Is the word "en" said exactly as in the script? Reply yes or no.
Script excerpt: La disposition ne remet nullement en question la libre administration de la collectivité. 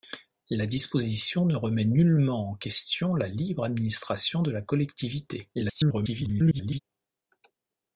yes